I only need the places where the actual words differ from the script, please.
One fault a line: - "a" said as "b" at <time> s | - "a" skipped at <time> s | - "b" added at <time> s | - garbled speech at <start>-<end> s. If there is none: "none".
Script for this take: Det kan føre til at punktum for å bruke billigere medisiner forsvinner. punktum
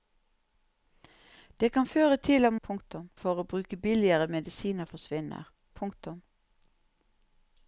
none